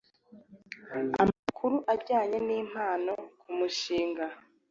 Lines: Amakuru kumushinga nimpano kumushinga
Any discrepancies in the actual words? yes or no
yes